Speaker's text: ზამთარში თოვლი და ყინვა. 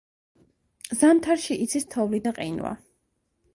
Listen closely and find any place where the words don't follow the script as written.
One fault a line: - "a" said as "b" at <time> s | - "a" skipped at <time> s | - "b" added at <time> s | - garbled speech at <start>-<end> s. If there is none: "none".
- "იცის" added at 1.7 s